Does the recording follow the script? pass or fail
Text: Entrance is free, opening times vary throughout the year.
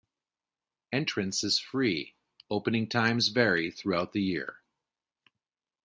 pass